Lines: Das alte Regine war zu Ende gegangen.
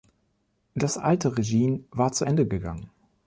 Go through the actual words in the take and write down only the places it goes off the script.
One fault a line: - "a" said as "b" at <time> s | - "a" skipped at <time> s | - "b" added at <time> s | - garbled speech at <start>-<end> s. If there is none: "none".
none